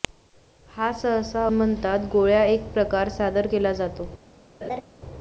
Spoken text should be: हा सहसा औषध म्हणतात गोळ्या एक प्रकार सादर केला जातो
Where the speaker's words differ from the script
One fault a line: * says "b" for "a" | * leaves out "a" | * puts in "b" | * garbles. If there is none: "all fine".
* leaves out "औषध"